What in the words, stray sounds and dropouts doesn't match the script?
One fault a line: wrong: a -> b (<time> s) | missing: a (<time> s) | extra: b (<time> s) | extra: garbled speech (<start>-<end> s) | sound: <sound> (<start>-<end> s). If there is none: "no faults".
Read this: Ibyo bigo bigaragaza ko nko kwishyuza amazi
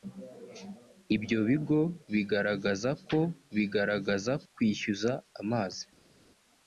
wrong: nko -> bigaragaza (3.6 s)